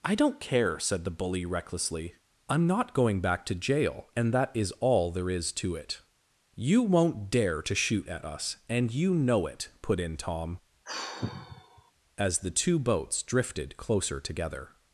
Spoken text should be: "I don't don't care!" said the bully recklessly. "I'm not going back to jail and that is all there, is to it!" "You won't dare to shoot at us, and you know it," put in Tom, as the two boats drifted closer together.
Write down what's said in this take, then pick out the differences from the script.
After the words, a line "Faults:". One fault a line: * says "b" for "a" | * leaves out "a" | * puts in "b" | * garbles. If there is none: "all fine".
"I don't care!" said the bully recklessly. "I'm not going back to jail and that is all there, is to it!" "You won't dare to shoot at us, and you know it," put in Tom, as the two boats drifted closer together.
Faults:
* leaves out "don't"